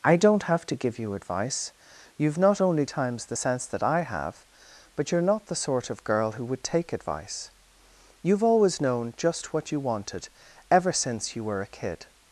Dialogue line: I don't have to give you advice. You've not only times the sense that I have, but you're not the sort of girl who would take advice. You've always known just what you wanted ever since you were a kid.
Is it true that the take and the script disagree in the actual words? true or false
false